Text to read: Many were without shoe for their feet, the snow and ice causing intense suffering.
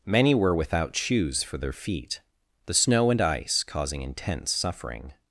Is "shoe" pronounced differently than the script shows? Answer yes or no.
yes